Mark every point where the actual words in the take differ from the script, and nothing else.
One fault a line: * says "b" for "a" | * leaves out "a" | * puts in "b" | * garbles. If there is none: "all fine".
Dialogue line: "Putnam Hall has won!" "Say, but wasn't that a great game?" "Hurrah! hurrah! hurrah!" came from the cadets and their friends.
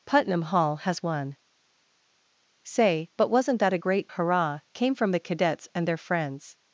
* leaves out "game Hurrah hurrah"